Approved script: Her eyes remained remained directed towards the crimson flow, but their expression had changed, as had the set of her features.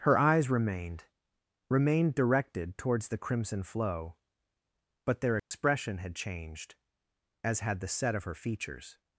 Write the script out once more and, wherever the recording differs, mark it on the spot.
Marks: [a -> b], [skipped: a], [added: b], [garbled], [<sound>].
Her eyes remained remained directed towards the crimson flow, but their expression [dropout] had changed, as had the set of her features.